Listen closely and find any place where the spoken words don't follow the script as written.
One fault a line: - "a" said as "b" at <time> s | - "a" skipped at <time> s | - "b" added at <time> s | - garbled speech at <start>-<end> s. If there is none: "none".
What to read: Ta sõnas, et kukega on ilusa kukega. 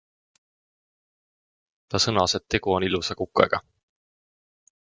- "kukega" said as "tegu" at 2.5 s